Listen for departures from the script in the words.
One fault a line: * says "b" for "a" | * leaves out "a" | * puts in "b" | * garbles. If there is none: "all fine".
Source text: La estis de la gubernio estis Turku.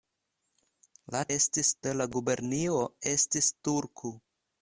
all fine